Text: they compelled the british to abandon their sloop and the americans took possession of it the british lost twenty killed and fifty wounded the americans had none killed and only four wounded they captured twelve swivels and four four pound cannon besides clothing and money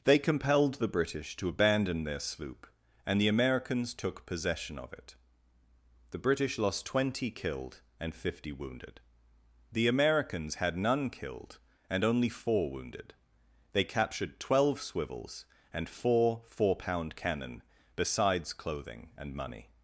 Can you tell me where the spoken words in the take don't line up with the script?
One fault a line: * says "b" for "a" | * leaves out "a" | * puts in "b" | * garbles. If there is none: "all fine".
all fine